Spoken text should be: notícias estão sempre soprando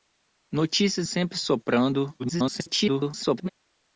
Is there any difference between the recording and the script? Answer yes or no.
yes